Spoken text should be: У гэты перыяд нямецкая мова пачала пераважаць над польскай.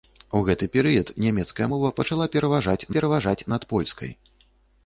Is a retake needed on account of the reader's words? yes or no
yes